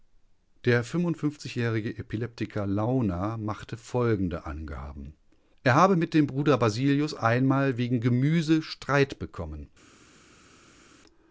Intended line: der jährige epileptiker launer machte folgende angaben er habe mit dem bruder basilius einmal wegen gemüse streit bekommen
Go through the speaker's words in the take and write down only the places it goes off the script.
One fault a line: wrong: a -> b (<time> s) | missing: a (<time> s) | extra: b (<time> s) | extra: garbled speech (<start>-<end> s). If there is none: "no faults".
no faults